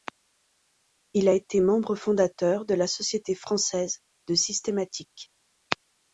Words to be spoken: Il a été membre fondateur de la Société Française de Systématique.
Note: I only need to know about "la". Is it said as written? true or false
true